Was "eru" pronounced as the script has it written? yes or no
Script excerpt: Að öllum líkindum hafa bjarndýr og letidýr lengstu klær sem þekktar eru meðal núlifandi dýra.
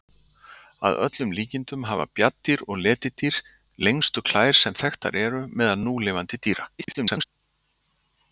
yes